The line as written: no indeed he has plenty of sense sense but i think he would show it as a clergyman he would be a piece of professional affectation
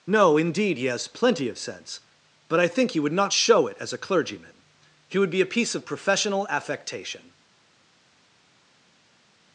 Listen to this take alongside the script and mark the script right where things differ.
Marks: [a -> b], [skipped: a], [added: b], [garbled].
no indeed he has plenty of sense [skipped: sense] but i think he would [added: not] show it as a clergyman he would be a piece of professional affectation